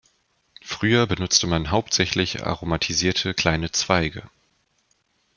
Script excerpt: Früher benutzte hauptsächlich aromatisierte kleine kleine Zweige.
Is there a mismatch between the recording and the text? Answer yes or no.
yes